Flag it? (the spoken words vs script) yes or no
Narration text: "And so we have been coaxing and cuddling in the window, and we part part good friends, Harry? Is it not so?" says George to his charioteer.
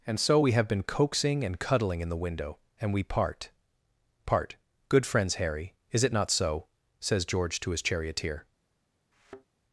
no